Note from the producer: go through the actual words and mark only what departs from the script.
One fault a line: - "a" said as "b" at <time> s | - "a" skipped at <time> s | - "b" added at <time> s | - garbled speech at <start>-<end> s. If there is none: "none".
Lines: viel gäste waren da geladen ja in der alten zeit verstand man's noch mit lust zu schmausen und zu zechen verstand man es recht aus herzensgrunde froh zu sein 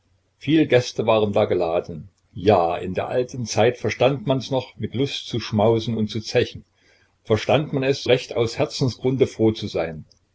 none